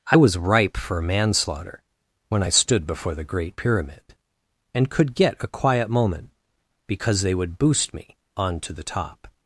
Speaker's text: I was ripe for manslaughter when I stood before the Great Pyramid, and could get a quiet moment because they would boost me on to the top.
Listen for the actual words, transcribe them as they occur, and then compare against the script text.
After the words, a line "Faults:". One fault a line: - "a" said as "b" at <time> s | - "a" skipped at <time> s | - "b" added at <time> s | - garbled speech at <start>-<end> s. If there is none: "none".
I was ripe for manslaughter when I stood before the Great Pyramid, and could get a quiet moment because they would boost me on to the top.
Faults:
none